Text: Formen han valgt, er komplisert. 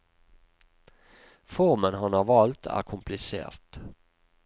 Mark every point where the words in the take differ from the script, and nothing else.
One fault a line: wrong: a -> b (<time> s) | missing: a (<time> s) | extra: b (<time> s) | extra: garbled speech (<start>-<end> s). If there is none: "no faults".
extra: har (2.1 s)